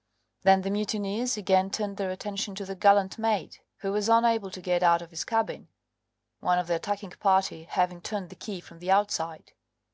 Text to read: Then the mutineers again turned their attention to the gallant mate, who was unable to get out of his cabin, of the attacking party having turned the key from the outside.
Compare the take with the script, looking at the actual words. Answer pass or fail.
fail